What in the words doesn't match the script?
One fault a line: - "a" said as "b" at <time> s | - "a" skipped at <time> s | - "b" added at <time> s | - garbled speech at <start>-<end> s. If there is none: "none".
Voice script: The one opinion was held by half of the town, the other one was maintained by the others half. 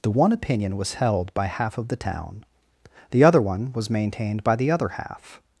- "others" said as "other" at 4.7 s